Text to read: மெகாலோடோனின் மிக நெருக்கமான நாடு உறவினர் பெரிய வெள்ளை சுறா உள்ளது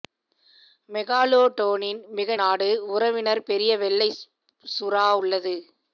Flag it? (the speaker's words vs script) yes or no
yes